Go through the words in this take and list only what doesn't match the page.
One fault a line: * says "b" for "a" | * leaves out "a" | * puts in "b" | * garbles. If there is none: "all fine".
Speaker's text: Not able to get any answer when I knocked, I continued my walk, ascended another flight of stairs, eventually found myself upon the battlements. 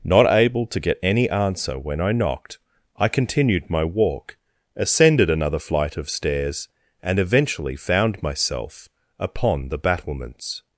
* puts in "and"